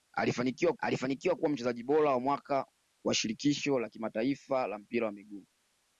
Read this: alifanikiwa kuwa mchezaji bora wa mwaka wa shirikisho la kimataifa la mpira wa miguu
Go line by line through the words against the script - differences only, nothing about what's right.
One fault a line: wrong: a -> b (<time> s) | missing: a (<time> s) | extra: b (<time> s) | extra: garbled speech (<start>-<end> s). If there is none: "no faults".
extra: alifanikiwa (0.8 s)